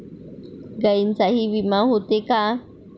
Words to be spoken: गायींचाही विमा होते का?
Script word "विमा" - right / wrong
right